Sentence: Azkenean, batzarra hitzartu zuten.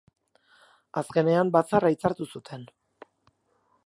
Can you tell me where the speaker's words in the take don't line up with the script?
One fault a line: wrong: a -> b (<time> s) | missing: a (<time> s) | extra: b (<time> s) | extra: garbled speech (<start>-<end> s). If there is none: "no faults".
no faults